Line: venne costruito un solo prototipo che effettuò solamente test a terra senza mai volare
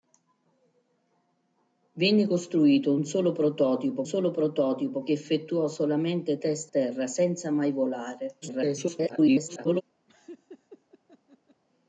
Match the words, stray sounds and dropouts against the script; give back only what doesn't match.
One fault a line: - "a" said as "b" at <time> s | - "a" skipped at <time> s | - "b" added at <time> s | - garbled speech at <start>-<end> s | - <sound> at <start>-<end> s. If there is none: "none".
- "solo prototipo" added at 4.0 s
- "a" skipped at 6.7 s
- garbled speech at 8.4-9.8 s
- laugh at 10.1-11.6 s